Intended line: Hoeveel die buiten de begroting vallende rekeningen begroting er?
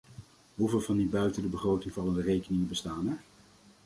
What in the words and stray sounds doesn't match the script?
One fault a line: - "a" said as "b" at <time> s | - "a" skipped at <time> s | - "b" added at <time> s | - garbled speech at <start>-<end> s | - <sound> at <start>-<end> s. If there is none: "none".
- "van" added at 0.8 s
- "begroting" said as "bestaan" at 2.7 s